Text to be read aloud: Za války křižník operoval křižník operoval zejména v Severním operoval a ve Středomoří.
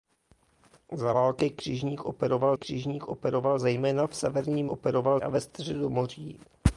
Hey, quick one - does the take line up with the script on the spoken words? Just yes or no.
yes